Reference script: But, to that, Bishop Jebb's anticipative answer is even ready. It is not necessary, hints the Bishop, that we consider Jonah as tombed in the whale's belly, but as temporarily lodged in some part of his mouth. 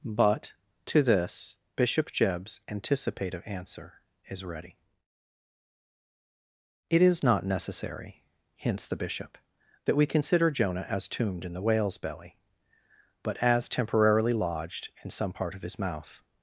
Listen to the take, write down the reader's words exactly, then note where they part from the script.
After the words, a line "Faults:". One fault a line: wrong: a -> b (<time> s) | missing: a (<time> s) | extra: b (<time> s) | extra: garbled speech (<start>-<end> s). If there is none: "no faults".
But, to this, Bishop Jebb's anticipative answer is ready. It is not necessary, hints the Bishop, that we consider Jonah as tombed in the whale's belly, but as temporarily lodged in some part of his mouth.
Faults:
wrong: that -> this (1.0 s)
missing: even (4.4 s)